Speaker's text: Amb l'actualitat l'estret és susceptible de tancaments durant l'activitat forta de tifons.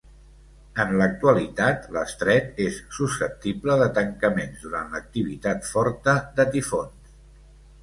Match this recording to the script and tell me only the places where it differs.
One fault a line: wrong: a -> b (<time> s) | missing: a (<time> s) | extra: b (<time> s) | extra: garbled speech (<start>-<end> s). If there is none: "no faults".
wrong: Amb -> En (0.8 s)